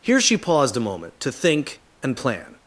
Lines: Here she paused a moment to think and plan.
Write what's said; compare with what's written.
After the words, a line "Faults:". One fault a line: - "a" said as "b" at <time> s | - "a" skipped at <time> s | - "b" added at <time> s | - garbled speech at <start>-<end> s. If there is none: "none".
Here she paused a moment to think and plan.
Faults:
none